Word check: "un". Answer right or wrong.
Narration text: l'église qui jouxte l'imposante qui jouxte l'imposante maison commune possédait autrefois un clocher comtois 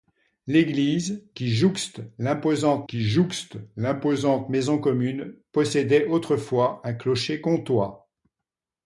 right